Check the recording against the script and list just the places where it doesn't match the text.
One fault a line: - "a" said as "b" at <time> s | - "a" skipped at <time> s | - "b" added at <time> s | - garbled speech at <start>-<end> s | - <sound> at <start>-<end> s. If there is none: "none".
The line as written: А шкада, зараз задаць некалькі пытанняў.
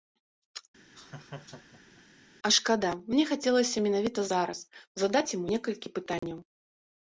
- laugh at 0.9-2.0 s
- "мне хацелася менавіта" added at 3.1 s
- "яму" added at 5.4 s
- dropout at 6.2-6.2 s